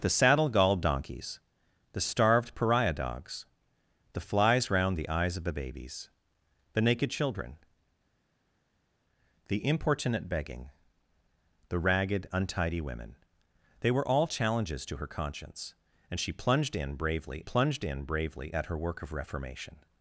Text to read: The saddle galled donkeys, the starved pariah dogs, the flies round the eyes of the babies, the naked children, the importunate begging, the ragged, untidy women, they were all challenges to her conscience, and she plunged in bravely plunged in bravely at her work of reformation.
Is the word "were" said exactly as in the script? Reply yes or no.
yes